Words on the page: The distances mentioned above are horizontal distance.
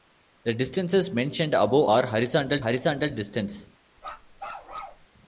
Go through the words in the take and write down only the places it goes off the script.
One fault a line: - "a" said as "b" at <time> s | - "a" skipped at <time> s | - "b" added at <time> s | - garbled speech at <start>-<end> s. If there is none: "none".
- "horizontal" added at 2.6 s